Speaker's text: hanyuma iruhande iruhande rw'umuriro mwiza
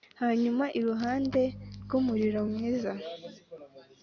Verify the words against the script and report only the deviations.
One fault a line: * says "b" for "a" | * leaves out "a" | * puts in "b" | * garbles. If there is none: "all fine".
* leaves out "iruhande"